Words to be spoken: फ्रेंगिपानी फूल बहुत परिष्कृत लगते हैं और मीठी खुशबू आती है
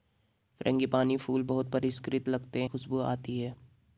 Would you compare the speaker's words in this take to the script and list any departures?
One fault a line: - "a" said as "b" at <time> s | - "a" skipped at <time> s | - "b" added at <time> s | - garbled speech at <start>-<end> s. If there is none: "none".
- "हैं और मीठी" skipped at 2.6 s